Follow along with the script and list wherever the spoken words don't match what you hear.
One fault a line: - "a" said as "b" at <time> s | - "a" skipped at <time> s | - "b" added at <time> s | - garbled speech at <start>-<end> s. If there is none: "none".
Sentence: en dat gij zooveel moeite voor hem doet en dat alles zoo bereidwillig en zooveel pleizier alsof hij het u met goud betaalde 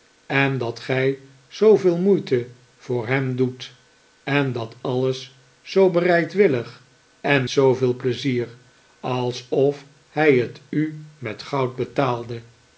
none